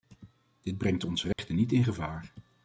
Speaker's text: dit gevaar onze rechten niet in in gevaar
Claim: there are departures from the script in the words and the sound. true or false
true